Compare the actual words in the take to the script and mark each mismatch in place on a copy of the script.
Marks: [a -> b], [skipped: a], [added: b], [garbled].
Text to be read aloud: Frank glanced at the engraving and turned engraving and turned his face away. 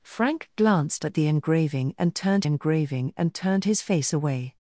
Frank glanced at the engraving and turned engraving and turned his face away.